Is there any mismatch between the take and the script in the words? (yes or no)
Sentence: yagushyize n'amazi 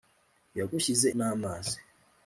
no